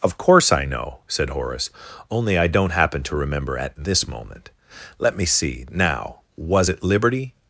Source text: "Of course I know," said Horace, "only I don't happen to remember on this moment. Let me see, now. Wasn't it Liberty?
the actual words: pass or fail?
fail